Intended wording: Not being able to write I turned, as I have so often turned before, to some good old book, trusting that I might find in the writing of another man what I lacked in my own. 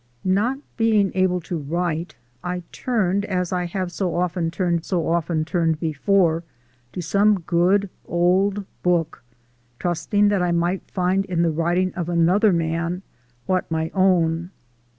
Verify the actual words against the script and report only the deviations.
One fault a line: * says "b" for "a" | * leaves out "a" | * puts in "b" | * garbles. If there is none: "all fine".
* puts in "so often turned"
* leaves out "I lacked in"